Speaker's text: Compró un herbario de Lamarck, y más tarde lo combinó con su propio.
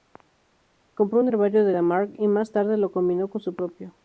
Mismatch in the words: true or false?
false